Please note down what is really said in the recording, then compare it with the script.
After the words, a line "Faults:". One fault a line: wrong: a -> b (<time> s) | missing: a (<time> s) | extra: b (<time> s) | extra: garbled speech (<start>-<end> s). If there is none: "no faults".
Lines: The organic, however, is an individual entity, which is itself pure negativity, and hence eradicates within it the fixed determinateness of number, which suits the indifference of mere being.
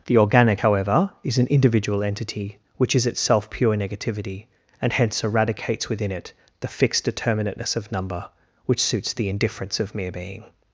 The organic, however, is an individual entity, which is itself pure negativity, and hence eradicates within it the fixed determinateness of number, which suits the indifference of mere being.
Faults:
no faults